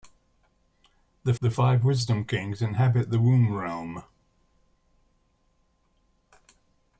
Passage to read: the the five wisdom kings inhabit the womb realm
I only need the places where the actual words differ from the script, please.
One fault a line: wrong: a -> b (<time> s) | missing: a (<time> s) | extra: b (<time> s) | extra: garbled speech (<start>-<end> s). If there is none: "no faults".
no faults